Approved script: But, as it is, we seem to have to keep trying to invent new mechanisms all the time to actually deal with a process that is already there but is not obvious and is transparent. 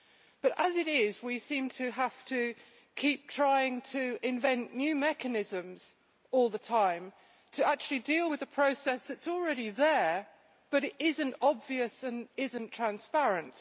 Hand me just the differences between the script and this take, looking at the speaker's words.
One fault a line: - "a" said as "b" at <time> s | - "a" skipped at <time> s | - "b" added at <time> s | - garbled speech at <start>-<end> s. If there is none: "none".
- "not" added at 12.5 s